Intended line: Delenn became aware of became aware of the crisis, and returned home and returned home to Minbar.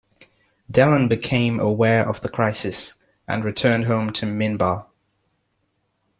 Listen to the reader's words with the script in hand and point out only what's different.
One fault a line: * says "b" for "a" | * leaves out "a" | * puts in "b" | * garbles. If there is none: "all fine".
* leaves out "became aware of"
* leaves out "and returned home"